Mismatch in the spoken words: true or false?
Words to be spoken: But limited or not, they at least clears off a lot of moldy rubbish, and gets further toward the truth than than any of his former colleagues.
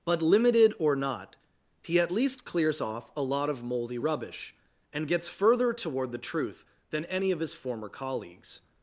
true